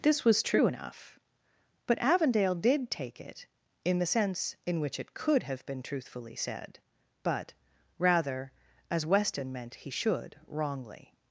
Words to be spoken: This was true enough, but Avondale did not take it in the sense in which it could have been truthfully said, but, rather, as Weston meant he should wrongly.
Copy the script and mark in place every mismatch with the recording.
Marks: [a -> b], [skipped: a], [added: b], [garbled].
This was true enough, but Avondale did [skipped: not] take it in the sense in which it could have been truthfully said, but, rather, as Weston meant he should wrongly.